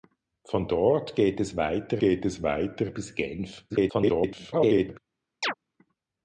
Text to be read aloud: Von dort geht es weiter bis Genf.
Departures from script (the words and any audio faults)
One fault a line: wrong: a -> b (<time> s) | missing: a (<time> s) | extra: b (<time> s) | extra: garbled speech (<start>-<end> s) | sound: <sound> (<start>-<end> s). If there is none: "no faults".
extra: geht es weiter (2.0 s)
extra: garbled speech (3.7-5.0 s)
sound: chirp (5.4-5.5 s)